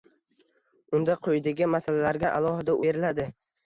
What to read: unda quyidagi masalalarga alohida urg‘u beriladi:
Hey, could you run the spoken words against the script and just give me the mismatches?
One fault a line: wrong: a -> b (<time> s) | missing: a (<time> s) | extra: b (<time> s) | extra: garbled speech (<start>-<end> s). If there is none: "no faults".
missing: urg‘u (2.8 s)